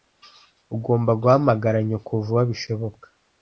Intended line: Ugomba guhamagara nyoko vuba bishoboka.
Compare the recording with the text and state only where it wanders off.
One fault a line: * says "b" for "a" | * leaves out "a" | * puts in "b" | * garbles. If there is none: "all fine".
all fine